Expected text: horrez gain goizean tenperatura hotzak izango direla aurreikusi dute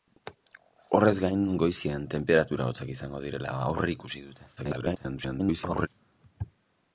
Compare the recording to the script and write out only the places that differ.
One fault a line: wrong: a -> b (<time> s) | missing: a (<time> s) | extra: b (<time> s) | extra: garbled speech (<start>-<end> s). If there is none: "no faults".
extra: garbled speech (4.6-5.9 s)